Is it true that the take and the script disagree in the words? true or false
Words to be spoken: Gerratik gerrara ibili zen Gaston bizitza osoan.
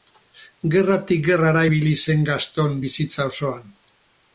false